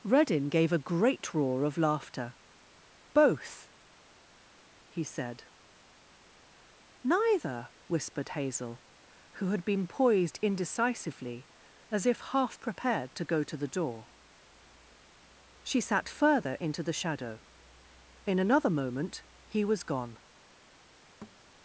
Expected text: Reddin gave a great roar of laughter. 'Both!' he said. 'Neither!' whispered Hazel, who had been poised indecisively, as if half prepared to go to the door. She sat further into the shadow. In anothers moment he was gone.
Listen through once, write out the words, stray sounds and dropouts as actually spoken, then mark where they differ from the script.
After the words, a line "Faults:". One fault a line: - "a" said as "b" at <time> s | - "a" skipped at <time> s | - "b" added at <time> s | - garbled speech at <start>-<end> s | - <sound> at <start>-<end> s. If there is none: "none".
Reddin gave a great roar of laughter. 'Both!' he said. 'Neither!' whispered Hazel, who had been poised indecisively, as if half prepared to go to the door. She sat further into the shadow. In another moment he was gone.
Faults:
- "anothers" said as "another" at 18.4 s
- thud at 21.2-21.4 s